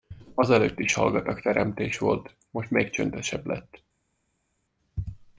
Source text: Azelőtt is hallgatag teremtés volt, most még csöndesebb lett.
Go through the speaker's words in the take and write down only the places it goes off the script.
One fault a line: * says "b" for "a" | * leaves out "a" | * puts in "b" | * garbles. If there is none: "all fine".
all fine